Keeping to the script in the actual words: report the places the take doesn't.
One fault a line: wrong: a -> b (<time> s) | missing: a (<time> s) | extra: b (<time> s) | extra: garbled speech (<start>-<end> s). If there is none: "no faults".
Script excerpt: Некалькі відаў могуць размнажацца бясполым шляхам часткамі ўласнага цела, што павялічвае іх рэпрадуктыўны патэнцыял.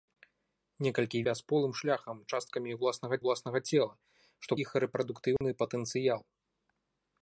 missing: відаў могуць размнажацца (1.2 s)
extra: ўласнага (3.2 s)
missing: павялічвае (4.5 s)